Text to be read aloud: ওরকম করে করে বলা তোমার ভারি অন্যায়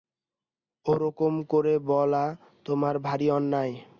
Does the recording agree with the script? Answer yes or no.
no